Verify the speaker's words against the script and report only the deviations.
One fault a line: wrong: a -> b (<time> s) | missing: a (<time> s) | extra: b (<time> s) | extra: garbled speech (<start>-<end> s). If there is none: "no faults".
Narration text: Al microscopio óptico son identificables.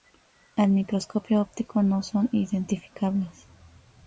extra: no (1.8 s)